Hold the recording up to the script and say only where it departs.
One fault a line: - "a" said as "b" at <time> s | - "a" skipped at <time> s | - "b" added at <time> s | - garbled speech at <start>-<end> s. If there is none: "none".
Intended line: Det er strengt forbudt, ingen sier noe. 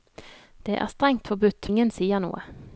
none